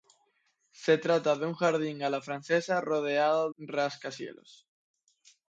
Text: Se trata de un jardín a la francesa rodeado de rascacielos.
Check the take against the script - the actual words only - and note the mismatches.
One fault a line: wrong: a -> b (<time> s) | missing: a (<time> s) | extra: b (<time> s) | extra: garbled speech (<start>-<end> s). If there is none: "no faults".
missing: de (3.5 s)